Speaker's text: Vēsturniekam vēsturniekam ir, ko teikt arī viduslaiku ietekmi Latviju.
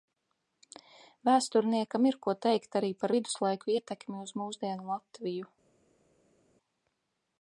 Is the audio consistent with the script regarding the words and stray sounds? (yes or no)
no